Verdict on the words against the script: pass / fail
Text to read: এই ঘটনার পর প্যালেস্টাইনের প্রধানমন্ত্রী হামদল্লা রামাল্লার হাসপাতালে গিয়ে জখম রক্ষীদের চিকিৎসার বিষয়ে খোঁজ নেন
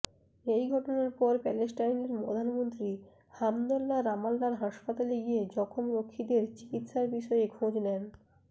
pass